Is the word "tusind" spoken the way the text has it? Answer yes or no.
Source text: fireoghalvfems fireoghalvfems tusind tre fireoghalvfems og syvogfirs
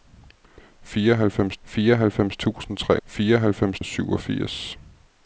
yes